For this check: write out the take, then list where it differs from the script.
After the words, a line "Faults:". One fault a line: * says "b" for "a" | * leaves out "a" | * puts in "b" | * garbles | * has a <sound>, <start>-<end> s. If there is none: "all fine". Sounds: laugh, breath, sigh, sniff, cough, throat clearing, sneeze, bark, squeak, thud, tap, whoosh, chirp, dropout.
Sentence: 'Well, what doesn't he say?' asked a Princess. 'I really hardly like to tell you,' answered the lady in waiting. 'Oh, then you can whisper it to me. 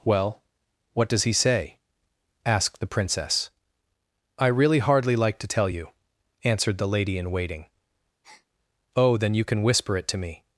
'Well, what does he say?' asked the Princess. 'I really hardly like to tell you,' answered the lady in waiting. 'Oh, then you can whisper it to me.
Faults:
* says "does" for "doesn't"
* says "the" for "a"
* has a breath, 8.2-8.5 s